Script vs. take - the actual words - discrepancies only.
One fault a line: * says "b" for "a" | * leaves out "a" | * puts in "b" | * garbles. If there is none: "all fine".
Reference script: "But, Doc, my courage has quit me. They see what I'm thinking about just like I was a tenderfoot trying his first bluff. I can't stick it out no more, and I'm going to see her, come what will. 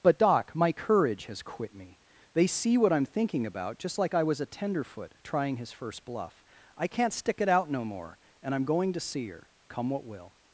all fine